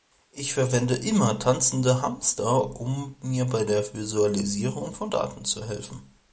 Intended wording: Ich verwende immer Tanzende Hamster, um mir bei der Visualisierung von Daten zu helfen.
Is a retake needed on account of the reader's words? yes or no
no